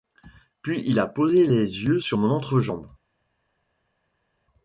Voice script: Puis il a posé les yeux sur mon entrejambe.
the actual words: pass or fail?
pass